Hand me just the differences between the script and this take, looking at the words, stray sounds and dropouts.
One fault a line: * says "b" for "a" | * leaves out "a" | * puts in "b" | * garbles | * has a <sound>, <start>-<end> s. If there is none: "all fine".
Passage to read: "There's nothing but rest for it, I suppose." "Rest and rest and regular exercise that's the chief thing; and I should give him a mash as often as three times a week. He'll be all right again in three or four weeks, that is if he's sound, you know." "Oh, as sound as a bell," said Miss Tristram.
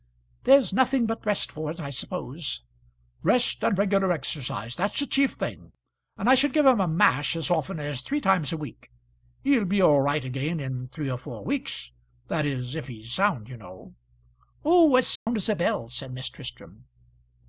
* leaves out "rest and"
* has a dropout, 15.2-15.3 s